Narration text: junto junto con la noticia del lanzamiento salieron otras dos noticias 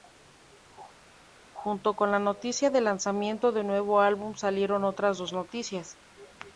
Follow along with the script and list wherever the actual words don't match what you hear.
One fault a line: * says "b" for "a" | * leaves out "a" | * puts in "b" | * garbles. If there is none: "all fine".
* leaves out "junto"
* puts in "del nuevo álbum"